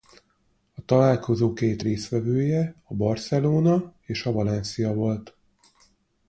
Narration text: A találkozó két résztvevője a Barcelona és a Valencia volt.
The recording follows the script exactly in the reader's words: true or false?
true